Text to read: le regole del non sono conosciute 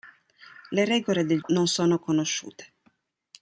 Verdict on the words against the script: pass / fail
pass